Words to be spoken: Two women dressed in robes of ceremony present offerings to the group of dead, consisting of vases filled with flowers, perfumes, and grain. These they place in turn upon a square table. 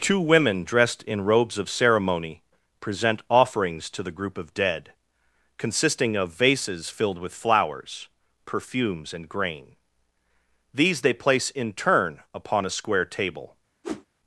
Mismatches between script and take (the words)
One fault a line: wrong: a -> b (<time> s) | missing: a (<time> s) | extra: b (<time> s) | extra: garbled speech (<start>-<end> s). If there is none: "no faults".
no faults